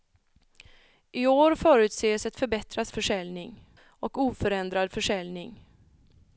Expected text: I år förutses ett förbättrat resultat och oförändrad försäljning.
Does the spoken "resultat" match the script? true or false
false